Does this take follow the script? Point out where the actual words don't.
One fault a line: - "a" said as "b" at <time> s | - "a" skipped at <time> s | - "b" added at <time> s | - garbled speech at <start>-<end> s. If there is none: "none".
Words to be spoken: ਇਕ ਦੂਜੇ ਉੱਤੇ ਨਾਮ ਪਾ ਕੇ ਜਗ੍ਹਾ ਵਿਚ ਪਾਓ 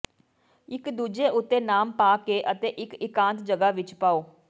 - "ਅਤੇ ਇਕ ਇਕਾਂਤ" added at 2.5 s